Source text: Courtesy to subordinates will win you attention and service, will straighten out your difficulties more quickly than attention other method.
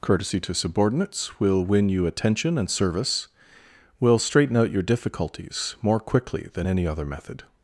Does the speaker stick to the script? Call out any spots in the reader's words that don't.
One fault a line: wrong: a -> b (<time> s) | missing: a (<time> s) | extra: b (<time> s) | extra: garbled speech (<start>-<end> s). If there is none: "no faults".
wrong: attention -> any (6.7 s)